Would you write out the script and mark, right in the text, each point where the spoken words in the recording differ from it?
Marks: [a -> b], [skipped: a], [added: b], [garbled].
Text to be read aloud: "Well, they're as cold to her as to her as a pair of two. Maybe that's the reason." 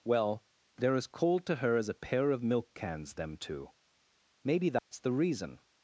"Well, they're as cold to her as [to her as a pair of -> a pair of milk cans them] two. Maybe that's the reason."